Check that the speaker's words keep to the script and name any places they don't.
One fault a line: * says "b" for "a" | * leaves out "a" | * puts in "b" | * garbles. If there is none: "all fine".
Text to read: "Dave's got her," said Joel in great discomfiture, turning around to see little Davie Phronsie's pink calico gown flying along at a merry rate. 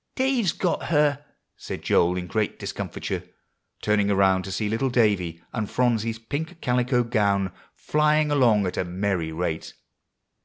* puts in "and"